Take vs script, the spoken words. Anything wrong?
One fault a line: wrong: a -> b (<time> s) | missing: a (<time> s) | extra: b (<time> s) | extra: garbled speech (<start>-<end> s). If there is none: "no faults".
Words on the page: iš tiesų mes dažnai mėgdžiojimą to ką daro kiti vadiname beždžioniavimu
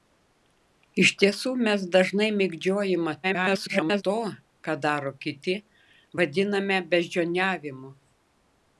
extra: garbled speech (3.2-4.0 s)